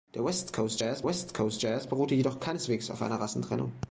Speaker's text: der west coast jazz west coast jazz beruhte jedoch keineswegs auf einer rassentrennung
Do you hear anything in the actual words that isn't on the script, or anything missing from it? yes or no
no